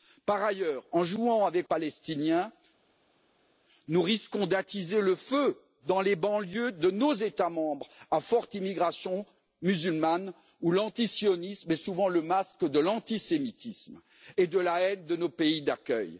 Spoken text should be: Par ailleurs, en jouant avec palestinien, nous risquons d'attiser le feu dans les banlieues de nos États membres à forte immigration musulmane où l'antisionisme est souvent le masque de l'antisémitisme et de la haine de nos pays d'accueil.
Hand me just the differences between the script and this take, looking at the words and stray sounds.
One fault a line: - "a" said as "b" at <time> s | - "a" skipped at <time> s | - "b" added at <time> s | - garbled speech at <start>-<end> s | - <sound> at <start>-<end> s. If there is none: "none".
none